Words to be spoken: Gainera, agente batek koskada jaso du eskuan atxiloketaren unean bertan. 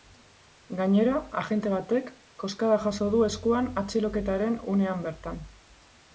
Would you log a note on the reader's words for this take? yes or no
no